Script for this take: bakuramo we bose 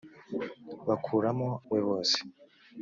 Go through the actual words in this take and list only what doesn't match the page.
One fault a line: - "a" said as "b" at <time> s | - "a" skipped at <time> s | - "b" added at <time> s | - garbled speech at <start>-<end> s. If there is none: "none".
none